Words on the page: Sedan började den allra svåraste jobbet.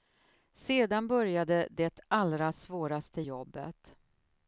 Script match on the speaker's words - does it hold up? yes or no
no